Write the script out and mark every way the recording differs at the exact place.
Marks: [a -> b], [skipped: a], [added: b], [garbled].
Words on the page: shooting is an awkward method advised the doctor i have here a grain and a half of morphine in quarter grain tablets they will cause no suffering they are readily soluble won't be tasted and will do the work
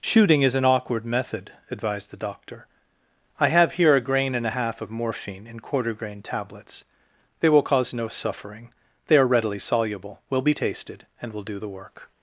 shooting is an awkward method advised the doctor i have here a grain and a half of morphine in quarter grain tablets they will cause no suffering they are readily soluble [won't -> will] be tasted and will do the work